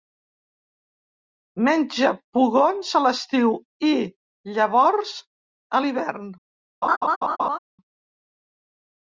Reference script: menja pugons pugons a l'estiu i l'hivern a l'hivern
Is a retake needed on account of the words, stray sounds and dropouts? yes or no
yes